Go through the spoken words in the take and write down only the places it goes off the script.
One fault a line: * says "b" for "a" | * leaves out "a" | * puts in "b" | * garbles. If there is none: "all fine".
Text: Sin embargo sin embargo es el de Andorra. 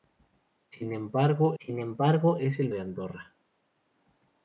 all fine